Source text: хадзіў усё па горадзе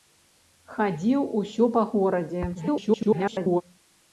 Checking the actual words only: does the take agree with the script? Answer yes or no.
no